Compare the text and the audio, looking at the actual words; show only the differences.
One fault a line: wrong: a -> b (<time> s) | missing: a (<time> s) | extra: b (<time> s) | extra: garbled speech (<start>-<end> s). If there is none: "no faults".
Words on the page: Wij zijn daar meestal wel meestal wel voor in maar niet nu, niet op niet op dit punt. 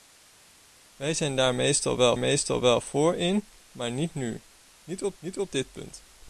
no faults